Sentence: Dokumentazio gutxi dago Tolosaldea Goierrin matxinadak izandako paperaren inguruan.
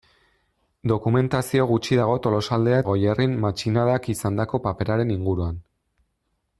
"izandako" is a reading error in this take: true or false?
false